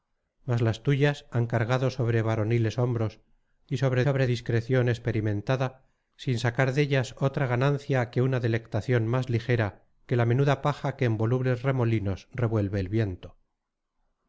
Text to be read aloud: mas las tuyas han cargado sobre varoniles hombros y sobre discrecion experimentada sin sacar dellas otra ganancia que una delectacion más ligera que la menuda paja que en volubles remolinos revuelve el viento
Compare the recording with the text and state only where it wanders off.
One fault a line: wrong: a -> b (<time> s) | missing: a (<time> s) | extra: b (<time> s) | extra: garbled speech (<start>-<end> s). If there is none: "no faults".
extra: sobre (4.0 s)